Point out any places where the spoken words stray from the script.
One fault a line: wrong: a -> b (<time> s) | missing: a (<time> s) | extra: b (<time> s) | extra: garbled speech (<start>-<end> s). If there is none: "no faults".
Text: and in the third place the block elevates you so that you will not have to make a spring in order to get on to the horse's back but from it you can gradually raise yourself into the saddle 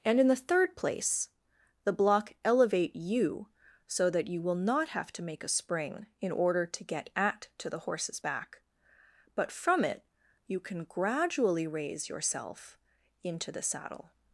wrong: elevates -> elevate (2.5 s)
wrong: on -> at (7.1 s)